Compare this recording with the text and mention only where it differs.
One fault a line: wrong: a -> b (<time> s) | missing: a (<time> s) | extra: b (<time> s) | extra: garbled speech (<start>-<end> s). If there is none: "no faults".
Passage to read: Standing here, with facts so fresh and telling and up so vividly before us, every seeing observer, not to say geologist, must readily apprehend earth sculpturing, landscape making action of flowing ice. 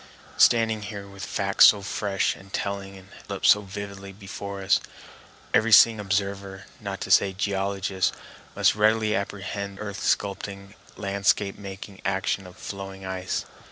no faults